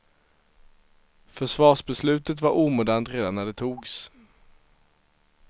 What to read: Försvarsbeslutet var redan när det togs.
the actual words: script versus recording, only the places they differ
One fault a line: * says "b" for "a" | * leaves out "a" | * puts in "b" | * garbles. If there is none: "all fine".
* puts in "omodernt"